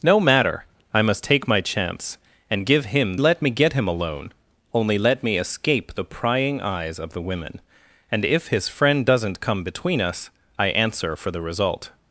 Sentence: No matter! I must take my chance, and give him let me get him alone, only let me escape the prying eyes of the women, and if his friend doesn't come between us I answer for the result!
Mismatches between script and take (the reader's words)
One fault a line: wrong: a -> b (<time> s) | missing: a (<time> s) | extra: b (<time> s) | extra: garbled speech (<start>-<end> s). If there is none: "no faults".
no faults